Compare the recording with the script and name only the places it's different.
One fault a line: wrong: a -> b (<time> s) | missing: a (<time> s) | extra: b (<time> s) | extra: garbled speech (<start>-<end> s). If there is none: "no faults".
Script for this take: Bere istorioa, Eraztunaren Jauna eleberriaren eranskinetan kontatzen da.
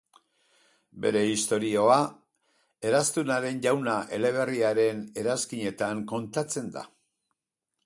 no faults